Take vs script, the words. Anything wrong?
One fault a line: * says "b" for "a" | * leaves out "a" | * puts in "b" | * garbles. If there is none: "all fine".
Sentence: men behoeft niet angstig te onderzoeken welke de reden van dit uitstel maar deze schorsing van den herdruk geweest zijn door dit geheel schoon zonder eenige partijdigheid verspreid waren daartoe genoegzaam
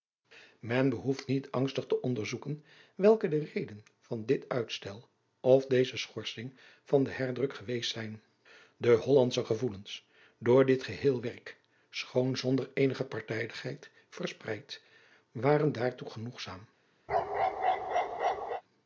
* says "of" for "maar"
* puts in "de hollandsche gevoelens"
* puts in "werk"